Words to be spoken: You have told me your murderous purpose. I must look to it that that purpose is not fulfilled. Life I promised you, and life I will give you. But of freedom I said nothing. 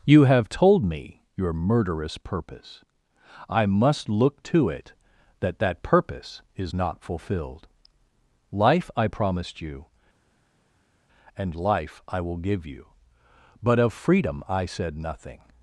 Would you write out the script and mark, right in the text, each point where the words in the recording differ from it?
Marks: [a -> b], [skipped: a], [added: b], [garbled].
You have told me your murderous purpose. I must look to it that that purpose is not fulfilled. Life I promised you, and life I will give you. But of freedom I said nothing.